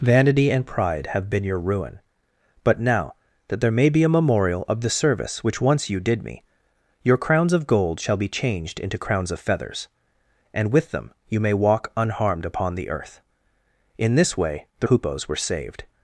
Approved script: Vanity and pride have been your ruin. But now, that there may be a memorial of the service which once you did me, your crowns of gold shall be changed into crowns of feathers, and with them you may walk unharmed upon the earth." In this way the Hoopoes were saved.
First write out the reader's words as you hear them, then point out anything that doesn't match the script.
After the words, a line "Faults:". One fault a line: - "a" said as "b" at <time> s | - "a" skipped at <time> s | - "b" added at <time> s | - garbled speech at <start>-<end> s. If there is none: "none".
Vanity and pride have been your ruin. But now, that there may be a memorial of the service which once you did me, your crowns of gold shall be changed into crowns of feathers, and with them you may walk unharmed upon the earth." In this way the Hoopoes were saved.
Faults:
none